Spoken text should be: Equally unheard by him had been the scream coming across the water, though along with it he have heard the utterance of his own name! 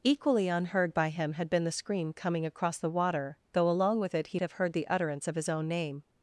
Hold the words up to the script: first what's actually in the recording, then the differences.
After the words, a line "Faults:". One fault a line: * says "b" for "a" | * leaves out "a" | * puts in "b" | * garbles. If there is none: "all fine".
Equally unheard by him had been the scream coming across the water, though along with it he have heard the utterance of his own name!
Faults:
all fine